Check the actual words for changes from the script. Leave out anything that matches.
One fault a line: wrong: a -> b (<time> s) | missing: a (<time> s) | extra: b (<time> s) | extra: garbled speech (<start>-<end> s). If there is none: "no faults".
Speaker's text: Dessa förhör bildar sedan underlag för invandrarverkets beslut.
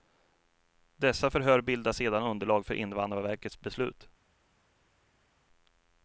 no faults